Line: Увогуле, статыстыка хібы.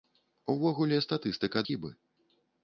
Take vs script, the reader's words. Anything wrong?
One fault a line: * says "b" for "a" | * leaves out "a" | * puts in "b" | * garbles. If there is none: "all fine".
all fine